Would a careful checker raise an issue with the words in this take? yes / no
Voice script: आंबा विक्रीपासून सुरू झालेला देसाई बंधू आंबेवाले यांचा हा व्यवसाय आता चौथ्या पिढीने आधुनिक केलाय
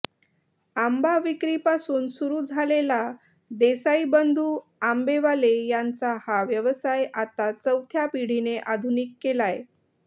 no